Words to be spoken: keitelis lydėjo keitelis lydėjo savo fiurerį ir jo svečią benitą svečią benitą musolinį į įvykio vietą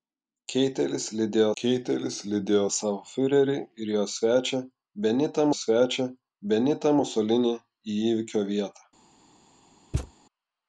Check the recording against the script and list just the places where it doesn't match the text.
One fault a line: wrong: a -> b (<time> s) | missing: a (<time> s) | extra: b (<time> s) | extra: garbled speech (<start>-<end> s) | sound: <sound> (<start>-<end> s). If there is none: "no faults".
sound: thud (9.9-10.1 s)